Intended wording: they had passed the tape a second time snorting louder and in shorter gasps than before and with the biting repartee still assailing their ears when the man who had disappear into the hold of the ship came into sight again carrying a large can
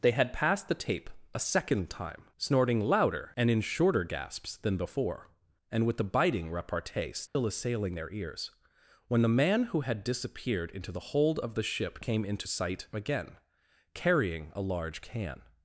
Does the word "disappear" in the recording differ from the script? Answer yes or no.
yes